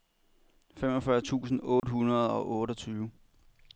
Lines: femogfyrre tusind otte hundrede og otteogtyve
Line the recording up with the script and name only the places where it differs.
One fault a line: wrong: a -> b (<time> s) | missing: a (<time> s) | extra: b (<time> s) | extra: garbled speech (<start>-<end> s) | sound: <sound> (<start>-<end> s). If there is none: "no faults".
sound: dropout (1.8-1.8 s)